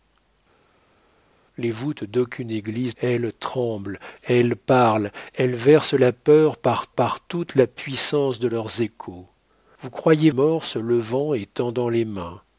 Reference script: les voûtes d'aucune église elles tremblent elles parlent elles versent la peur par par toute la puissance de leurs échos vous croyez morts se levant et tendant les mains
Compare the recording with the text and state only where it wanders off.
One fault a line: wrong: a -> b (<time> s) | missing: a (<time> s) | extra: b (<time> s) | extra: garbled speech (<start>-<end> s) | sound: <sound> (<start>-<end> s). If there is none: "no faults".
no faults